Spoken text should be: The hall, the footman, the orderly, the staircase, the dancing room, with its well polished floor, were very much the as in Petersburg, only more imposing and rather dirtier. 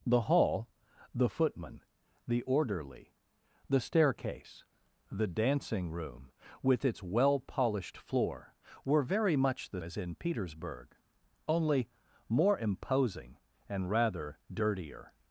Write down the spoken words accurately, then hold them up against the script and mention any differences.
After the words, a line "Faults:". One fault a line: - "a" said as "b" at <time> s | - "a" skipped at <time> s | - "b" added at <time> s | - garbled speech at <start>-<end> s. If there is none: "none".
The hall, the footman, the orderly, the staircase, the dancing room, with its well polished floor, were very much the as in Petersburg, only more imposing and rather dirtier.
Faults:
none